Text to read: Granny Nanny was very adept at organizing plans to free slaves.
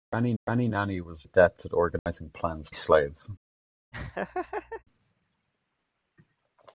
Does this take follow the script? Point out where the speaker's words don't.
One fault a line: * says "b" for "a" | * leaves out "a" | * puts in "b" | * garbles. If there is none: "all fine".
* puts in "granny"
* leaves out "very"
* leaves out "to free"